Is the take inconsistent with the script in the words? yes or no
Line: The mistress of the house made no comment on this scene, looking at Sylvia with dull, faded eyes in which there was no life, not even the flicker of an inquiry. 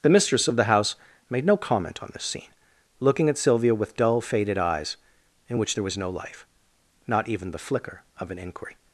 no